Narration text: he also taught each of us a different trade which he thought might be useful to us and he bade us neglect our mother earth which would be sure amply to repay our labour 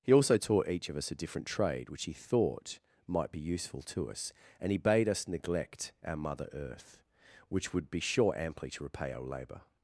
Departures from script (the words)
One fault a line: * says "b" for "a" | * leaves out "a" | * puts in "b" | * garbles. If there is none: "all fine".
all fine